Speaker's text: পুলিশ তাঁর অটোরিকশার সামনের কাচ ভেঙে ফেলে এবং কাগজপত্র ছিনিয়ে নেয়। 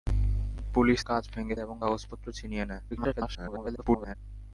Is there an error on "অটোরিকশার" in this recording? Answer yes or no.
yes